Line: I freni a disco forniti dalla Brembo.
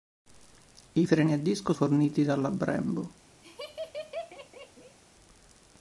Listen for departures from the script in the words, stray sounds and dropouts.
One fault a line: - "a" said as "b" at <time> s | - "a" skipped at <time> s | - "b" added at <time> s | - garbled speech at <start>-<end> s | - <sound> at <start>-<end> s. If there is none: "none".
- laugh at 3.4-5.0 s